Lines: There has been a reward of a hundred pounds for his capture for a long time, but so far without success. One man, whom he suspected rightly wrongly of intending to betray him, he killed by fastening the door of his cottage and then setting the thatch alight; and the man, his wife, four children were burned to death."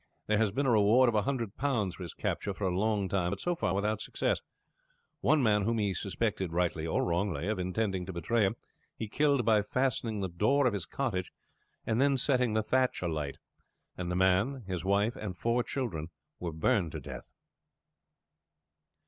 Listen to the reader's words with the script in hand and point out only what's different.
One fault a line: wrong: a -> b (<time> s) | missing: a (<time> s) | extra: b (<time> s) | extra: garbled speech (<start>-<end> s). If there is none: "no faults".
extra: or (6.8 s)
extra: and (15.1 s)